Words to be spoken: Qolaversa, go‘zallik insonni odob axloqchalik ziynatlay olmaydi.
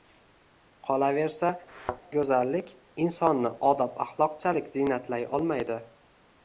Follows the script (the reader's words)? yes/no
yes